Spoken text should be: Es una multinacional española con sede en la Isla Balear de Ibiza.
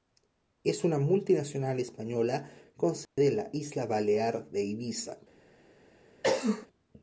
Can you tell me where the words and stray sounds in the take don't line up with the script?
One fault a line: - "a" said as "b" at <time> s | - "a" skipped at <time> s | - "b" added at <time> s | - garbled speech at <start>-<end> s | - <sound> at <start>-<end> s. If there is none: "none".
- dropout at 3.1-3.2 s
- cough at 6.2-6.7 s